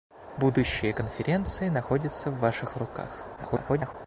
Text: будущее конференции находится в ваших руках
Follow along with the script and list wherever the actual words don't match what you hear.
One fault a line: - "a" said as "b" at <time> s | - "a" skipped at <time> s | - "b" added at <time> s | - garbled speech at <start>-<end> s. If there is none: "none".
- garbled speech at 3.4-3.9 s